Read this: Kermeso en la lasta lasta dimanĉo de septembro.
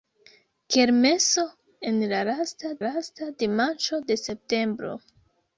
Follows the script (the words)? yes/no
yes